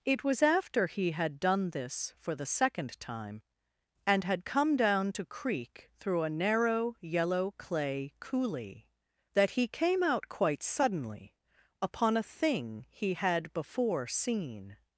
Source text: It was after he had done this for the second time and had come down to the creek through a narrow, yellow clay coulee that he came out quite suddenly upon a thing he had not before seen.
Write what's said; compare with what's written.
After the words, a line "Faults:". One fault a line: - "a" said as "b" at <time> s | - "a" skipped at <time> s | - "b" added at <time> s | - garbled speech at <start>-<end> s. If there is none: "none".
It was after he had done this for the second time and had come down to creek through a narrow, yellow clay coulee that he came out quite suddenly upon a thing he had before seen.
Faults:
- "the" skipped at 5.2 s
- "not" skipped at 13.5 s